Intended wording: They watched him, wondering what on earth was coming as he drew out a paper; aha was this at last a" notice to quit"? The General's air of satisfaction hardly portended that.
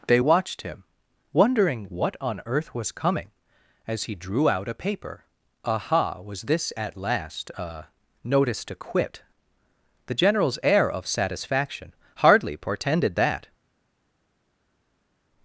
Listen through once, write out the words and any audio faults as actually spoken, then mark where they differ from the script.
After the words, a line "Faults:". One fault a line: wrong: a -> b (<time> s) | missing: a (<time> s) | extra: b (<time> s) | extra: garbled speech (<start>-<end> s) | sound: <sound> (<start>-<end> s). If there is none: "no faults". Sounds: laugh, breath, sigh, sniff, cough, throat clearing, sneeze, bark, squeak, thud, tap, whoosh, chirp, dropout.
They watched him, wondering what on earth was coming as he drew out a paper; aha was this at last a" notice to quit"? The General's air of satisfaction hardly portended that.
Faults:
no faults